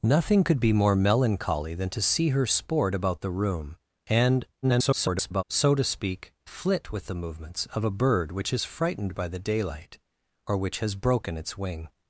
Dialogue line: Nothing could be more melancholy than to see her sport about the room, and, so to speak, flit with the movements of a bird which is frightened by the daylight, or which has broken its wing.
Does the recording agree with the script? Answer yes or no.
no